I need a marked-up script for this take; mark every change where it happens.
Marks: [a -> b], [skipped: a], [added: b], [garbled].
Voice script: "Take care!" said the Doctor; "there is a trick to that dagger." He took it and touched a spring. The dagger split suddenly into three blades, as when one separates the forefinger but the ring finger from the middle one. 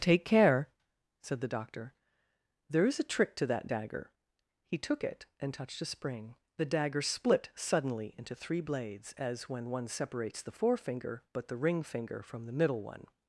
"Take care!" said the Doctor; "there is a trick to that dagger." He took it and touched a spring. The dagger split suddenly into three blades, as when one separates the forefinger but the ring finger from the middle one.